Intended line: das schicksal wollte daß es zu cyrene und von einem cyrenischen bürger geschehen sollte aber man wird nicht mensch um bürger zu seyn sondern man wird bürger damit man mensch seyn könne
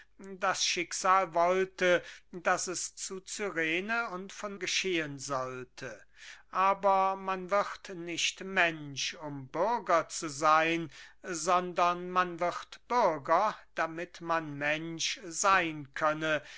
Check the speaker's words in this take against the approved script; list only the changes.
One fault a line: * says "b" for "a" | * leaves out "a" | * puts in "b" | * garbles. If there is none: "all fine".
* leaves out "einem cyrenischen bürger"